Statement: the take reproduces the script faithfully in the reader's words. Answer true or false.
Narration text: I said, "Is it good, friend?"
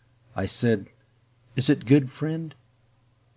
true